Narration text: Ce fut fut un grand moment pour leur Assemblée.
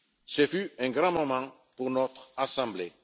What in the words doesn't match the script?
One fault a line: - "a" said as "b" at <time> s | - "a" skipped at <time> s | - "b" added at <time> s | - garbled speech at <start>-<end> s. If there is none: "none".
- "fut" skipped at 0.7 s
- "leur" said as "notre" at 1.9 s